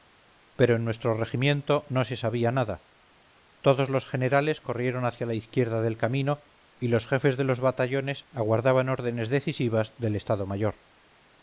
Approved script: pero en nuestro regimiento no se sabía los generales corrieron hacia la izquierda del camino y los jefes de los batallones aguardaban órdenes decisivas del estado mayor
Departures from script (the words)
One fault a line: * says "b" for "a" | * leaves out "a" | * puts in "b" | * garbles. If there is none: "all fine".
* puts in "nada todos"